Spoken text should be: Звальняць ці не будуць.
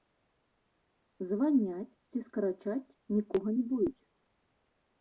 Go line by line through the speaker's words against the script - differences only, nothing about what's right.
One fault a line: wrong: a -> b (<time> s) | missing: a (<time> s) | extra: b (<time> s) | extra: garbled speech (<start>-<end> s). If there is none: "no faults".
extra: скарачаць нікога (2.3 s)